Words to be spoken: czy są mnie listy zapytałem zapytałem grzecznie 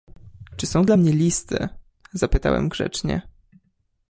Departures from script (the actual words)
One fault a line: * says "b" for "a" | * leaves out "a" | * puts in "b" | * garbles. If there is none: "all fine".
* puts in "dla"
* leaves out "zapytałem"